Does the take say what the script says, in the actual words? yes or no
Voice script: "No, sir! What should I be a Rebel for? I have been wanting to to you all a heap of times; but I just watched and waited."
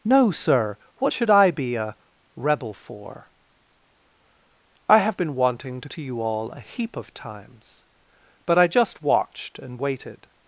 yes